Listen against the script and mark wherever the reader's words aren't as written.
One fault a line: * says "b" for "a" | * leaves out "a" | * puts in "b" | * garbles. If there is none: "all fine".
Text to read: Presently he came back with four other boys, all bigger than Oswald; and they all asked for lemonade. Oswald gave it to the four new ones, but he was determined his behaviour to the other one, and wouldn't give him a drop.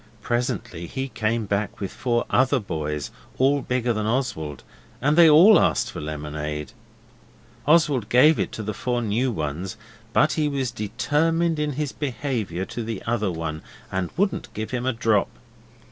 * puts in "in"